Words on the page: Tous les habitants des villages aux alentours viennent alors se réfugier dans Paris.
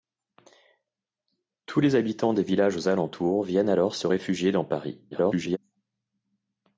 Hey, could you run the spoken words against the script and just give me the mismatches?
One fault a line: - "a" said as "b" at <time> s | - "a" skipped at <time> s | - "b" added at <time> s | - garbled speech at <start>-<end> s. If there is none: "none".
- garbled speech at 5.1-5.6 s